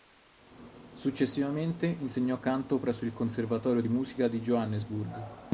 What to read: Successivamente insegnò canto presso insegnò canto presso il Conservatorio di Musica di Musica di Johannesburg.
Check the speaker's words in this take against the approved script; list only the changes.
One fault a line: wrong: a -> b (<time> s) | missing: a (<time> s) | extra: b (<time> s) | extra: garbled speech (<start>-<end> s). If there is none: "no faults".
missing: insegnò canto presso (3.0 s)
missing: Musica di (4.4 s)